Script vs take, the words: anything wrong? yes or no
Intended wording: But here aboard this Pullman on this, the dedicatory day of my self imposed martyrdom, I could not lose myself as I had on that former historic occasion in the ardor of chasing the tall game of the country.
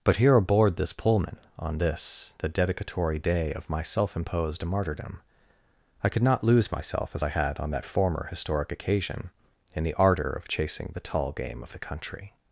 no